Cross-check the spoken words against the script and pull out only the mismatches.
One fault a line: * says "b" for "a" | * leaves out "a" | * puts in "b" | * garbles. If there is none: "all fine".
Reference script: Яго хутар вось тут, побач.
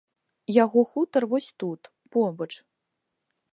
all fine